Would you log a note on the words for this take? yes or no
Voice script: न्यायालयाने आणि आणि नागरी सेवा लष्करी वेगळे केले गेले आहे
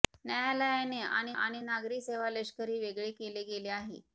no